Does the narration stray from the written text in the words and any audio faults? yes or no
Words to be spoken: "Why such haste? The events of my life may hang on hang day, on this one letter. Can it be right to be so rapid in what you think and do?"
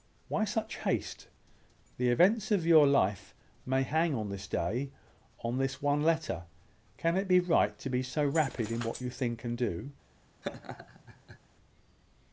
yes